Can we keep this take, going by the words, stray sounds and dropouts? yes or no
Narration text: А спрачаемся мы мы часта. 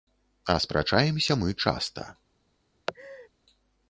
no